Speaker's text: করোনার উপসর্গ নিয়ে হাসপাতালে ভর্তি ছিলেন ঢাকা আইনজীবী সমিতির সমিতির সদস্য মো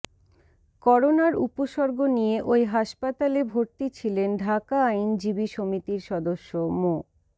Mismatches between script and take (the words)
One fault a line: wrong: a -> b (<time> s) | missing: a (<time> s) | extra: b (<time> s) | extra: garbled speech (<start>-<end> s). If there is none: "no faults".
extra: ওই (2.4 s)
missing: সমিতির (6.0 s)